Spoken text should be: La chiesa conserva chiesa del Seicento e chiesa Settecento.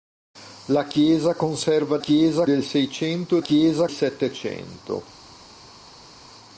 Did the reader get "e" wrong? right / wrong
right